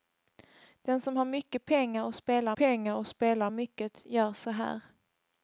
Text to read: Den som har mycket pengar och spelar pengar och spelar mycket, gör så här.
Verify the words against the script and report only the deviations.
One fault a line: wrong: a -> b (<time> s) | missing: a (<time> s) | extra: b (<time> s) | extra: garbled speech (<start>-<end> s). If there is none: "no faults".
no faults